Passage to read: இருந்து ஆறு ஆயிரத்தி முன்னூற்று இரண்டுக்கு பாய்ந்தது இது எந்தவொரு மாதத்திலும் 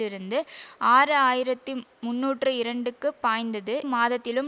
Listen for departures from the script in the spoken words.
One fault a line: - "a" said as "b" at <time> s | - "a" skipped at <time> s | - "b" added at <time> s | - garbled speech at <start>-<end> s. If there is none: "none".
- "இது எந்தவொரு" skipped at 3.8 s